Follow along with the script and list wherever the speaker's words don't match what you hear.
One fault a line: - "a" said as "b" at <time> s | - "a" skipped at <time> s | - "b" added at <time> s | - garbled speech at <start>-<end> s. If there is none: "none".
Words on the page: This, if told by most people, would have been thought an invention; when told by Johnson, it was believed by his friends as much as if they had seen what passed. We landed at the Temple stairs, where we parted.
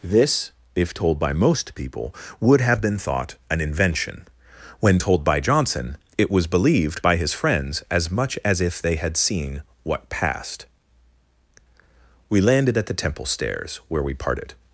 none